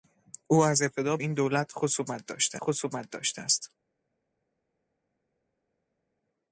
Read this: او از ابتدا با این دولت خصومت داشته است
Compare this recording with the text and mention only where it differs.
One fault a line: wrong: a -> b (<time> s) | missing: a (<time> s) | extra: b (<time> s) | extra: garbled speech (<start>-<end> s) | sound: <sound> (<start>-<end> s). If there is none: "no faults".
missing: با (1.2 s)
extra: خصومت داشته (2.6 s)